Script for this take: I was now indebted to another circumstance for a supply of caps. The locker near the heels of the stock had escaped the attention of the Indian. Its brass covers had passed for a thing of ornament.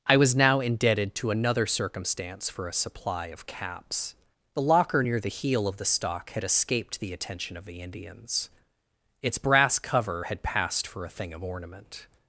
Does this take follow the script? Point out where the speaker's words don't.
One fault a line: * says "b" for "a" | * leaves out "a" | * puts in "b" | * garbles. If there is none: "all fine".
* says "heel" for "heels"
* says "Indians" for "Indian"
* says "cover" for "covers"